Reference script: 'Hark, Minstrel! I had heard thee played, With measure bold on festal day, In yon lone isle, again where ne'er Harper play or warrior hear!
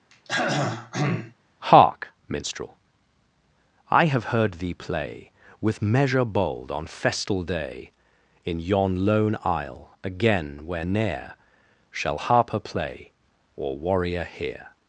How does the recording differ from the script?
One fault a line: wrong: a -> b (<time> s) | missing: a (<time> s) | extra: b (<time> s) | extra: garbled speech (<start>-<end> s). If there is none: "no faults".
wrong: had -> have (4.0 s)
wrong: played -> play (4.7 s)
extra: Shall (11.9 s)